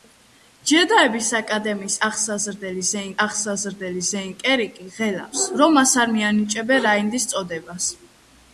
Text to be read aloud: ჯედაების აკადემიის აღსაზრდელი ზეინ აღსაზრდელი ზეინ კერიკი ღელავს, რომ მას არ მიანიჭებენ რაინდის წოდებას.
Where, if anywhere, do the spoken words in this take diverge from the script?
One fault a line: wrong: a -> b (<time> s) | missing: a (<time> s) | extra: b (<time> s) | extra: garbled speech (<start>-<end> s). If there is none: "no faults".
no faults